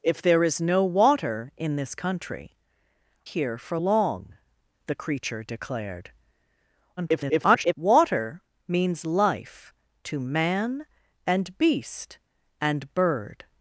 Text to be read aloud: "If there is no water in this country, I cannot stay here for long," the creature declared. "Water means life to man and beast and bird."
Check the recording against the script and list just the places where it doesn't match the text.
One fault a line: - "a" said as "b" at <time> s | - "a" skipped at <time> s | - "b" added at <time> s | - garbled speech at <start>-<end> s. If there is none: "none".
- "I cannot stay" skipped at 2.6 s
- garbled speech at 7.0-7.7 s